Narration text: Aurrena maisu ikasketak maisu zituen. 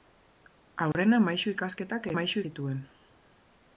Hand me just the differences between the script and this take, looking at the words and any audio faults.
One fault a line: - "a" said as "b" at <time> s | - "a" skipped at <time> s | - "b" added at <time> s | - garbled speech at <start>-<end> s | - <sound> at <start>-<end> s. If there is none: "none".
- dropout at 0.9-0.9 s